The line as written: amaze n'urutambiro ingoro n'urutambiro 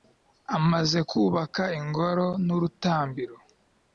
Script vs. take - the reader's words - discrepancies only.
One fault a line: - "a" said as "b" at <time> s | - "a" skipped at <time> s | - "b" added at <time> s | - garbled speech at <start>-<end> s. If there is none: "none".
- "n'urutambiro" said as "kubaka" at 1.1 s